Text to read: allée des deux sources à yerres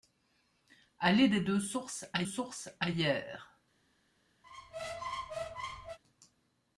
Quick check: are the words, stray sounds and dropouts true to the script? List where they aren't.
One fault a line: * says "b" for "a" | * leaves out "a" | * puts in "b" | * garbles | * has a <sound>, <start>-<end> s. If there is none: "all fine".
* puts in "sources à"
* has a squeak, 4.4-6.0 s